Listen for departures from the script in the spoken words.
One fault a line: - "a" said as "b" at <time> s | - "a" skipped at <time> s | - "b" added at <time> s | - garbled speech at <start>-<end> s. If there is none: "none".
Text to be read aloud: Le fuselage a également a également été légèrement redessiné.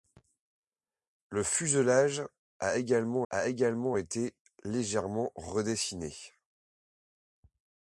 none